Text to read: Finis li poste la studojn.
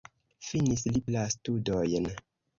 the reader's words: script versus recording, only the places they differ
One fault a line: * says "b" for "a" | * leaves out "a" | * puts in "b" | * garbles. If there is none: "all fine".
* leaves out "poste"